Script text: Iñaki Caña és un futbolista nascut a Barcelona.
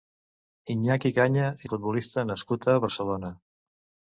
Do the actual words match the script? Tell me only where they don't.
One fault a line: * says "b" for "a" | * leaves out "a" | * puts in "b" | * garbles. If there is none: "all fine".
* leaves out "és"